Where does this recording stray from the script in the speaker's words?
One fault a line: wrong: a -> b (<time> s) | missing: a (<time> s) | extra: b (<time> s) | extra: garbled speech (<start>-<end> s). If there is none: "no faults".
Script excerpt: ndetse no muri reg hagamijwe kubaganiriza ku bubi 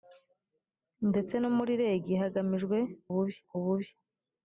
wrong: kubaganiriza -> bubi (3.1 s)